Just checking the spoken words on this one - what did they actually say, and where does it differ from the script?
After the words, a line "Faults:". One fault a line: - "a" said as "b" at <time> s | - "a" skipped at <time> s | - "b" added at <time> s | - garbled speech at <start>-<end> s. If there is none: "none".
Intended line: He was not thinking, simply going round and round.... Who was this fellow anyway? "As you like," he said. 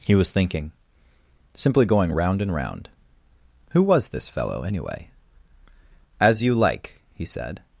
He was thinking, simply going round and round.... Who was this fellow anyway? "As you like," he said.
Faults:
- "not" skipped at 0.3 s